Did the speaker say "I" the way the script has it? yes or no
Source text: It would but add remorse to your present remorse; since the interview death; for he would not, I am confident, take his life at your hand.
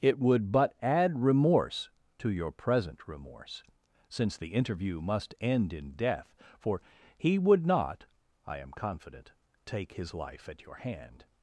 yes